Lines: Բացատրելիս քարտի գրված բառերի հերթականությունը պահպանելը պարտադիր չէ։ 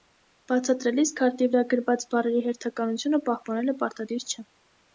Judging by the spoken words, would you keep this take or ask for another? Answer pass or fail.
fail